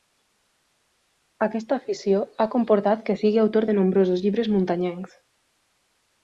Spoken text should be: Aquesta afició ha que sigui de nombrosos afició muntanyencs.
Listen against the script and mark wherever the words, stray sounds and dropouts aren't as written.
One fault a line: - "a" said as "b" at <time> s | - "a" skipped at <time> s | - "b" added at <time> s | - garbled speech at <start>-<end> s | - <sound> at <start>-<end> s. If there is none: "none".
- "comportat" added at 2.5 s
- "autor" added at 3.4 s
- "afició" said as "llibres" at 4.3 s